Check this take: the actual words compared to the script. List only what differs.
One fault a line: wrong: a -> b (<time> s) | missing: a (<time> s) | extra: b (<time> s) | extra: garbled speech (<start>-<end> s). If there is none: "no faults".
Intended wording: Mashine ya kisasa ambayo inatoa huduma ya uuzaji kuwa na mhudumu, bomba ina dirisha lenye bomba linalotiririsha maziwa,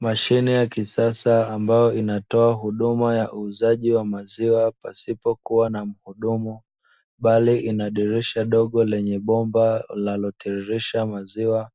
extra: wa maziwa pasipo (3.9 s)
wrong: bomba -> bali (7.2 s)
extra: dogo (8.4 s)